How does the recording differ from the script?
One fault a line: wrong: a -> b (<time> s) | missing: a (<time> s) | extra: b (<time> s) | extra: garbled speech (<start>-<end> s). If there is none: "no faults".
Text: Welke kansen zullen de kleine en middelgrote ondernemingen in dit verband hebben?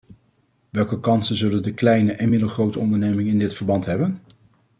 no faults